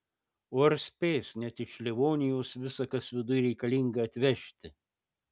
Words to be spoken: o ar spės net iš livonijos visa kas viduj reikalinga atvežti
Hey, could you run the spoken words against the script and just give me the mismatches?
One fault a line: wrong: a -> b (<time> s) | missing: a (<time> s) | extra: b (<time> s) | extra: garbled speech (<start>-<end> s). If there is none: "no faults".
no faults